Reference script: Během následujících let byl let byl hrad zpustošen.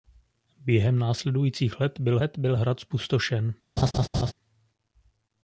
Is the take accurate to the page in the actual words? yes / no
yes